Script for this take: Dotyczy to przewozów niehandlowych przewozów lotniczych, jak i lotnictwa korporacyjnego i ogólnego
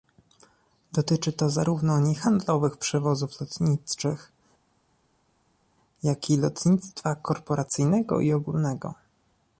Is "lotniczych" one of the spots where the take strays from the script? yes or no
no